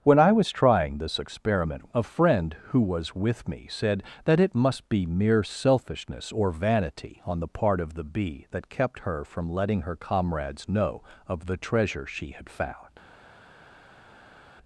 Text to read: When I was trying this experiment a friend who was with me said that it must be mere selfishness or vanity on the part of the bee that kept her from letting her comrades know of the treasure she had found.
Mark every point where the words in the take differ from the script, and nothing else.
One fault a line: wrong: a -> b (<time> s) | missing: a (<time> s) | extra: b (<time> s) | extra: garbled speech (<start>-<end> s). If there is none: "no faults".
no faults